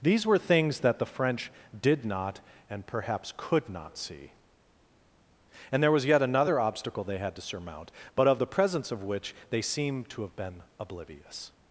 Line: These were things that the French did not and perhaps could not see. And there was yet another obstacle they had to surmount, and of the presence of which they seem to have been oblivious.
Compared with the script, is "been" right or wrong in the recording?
right